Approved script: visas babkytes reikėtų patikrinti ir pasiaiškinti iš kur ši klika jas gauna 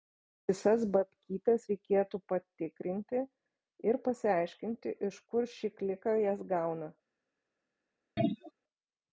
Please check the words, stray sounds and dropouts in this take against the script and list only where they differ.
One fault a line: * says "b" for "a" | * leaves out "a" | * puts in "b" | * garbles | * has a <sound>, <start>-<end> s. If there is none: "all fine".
* has a throat clearing, 8.2-8.5 s